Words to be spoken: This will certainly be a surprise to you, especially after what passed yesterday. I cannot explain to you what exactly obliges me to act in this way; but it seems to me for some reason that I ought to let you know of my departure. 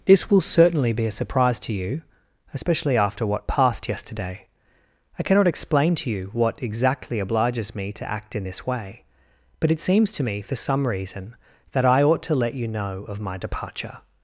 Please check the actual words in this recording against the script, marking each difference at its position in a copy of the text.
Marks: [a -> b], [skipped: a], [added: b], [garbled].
This will certainly be a surprise to you, especially after what passed yesterday. I cannot explain to you what exactly obliges me to act in this way; but it seems to me for some reason that I ought to let you know of my departure.